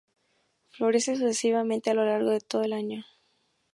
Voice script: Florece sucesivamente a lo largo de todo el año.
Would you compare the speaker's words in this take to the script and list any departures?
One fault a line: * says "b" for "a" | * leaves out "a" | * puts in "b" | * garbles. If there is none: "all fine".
all fine